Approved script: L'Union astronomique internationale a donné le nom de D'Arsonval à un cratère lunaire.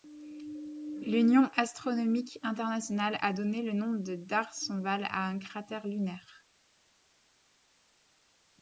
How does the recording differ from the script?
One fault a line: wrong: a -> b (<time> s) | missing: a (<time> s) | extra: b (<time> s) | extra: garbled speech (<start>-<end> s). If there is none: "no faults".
no faults